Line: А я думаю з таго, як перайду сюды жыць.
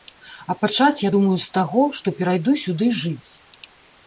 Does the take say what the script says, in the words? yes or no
no